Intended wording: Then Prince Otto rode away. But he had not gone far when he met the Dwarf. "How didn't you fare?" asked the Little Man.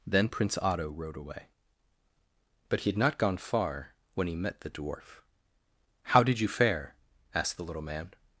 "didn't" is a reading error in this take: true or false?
true